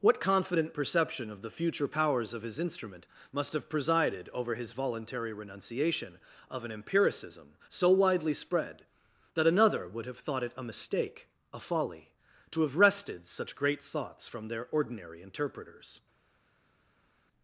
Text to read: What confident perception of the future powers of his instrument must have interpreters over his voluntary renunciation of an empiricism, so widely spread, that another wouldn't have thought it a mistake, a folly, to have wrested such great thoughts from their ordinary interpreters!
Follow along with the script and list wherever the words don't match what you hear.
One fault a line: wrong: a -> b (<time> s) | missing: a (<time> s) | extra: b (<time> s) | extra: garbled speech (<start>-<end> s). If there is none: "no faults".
wrong: interpreters -> presided (3.7 s)
wrong: wouldn't -> would (9.9 s)